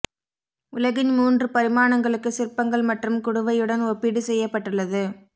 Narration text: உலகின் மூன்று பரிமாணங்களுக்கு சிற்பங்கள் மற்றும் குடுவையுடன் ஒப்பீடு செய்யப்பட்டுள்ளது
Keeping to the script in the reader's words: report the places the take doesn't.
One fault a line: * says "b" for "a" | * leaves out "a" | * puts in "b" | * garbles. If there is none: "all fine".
all fine